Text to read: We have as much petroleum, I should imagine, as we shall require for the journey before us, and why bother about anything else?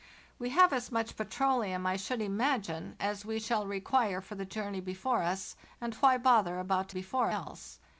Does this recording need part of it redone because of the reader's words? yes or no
yes